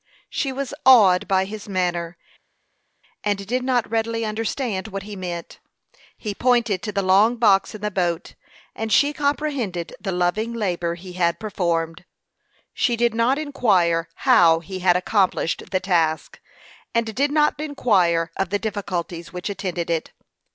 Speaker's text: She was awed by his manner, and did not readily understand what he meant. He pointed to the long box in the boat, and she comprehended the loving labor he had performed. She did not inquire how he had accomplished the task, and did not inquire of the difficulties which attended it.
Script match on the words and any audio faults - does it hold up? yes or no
yes